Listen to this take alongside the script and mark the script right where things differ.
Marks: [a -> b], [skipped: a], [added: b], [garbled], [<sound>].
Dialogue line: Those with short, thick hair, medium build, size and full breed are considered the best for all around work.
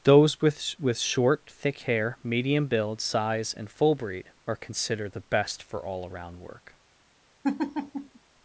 Those with [added: with] short, thick hair, medium build, size and full breed are considered the best for all around work. [laugh]